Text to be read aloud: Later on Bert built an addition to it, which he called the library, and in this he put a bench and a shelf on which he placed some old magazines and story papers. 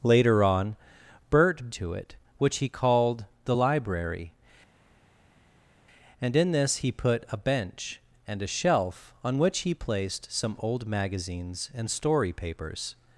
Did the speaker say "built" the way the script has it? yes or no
no